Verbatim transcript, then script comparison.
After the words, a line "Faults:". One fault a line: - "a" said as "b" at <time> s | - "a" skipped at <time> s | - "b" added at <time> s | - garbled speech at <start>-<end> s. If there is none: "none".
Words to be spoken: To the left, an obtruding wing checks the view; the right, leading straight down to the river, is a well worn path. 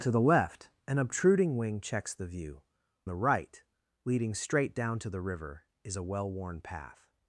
To the left, an obtruding wing checks the view; the right, leading straight down to the river, is a well worn path.
Faults:
none